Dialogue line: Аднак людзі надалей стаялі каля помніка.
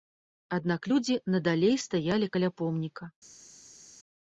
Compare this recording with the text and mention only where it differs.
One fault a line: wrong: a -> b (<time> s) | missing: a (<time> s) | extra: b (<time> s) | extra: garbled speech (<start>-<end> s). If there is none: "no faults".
no faults